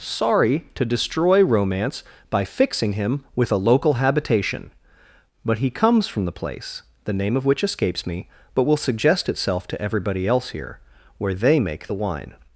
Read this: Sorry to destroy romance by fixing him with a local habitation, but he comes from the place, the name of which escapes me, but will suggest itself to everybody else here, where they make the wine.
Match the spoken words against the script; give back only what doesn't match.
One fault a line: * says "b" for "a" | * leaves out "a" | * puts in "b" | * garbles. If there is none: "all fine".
all fine